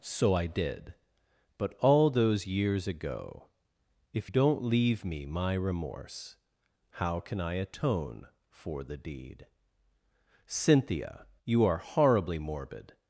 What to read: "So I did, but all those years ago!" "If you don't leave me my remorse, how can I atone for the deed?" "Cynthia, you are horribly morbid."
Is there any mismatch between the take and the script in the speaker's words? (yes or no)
yes